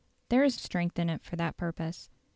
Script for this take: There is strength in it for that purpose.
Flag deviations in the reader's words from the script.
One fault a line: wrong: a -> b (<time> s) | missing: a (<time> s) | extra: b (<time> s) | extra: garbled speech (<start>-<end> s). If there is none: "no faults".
no faults